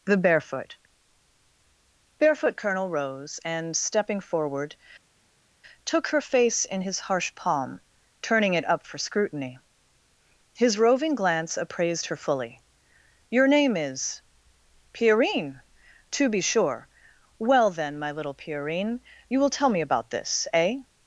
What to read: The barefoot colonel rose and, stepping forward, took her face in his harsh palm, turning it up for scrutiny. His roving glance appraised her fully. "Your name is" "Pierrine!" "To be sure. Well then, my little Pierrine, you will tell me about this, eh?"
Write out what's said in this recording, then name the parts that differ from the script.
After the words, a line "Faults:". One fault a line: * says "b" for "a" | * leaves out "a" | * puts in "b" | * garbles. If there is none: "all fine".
The barefoot barefoot colonel rose and, stepping forward, took her face in his harsh palm, turning it up for scrutiny. His roving glance appraised her fully. "Your name is" "Pierrine!" "To be sure. Well then, my little Pierrine, you will tell me about this, eh?"
Faults:
* puts in "barefoot"